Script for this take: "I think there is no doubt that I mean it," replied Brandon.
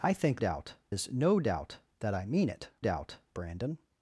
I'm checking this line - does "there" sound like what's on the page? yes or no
no